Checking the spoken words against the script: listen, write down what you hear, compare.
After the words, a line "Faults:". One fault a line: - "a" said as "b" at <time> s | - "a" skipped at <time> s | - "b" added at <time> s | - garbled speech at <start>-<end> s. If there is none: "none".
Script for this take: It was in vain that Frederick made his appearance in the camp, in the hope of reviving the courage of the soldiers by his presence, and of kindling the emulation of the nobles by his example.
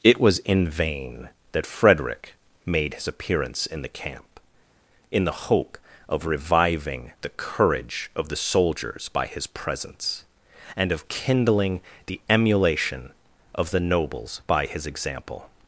It was in vain that Frederick made his appearance in the camp, in the hope of reviving the courage of the soldiers by his presence, and of kindling the emulation of the nobles by his example.
Faults:
none